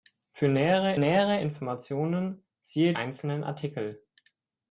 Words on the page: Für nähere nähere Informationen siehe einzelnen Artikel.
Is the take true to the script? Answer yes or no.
yes